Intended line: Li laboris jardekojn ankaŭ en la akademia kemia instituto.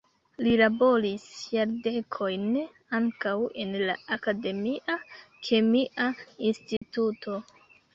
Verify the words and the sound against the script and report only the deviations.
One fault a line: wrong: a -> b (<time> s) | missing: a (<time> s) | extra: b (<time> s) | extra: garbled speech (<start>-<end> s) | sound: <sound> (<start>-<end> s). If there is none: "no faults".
sound: dropout (6.8-6.8 s)